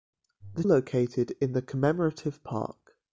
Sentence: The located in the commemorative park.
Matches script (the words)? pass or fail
pass